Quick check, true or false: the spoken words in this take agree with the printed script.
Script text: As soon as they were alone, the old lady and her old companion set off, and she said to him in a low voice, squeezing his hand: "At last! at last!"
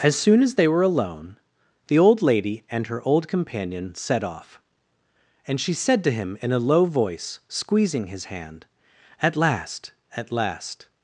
true